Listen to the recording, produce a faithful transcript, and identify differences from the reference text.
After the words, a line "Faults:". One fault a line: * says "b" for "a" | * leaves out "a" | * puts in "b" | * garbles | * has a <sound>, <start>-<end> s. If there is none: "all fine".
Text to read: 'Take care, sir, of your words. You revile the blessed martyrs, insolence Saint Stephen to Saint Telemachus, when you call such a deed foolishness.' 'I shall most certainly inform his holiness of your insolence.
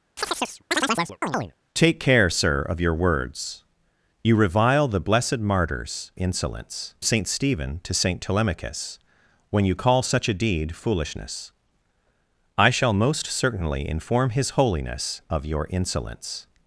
'Take care, sir, of your words. You revile the blessed martyrs, insolence Saint Stephen to Saint Telemachus, when you call such a deed foolishness.' 'I shall most certainly inform his holiness of your insolence.
Faults:
* has a chirp, 0.2-1.5 s